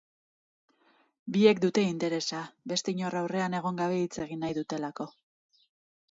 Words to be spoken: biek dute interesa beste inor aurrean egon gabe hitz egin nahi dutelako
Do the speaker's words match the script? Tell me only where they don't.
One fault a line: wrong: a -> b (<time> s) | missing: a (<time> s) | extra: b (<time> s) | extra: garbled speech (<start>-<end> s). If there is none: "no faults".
no faults